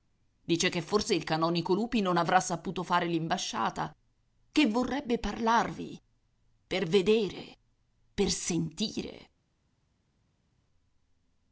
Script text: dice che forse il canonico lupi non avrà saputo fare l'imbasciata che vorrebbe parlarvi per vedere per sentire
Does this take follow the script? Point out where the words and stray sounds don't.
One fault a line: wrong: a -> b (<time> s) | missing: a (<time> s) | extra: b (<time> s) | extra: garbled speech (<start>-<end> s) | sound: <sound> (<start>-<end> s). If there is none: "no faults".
no faults